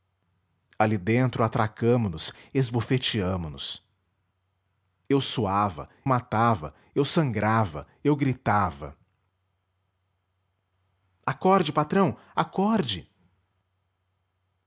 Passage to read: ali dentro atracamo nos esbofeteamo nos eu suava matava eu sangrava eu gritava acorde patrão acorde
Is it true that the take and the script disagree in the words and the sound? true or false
false